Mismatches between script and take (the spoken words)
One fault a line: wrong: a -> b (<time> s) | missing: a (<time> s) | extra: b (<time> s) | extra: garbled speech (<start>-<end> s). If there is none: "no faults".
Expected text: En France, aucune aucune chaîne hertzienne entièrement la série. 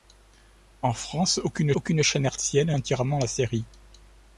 no faults